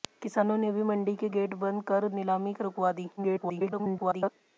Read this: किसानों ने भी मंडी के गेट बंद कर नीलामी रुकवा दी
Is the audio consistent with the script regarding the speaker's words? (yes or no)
no